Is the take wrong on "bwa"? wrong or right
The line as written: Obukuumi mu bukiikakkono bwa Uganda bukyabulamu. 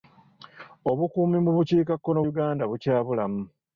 wrong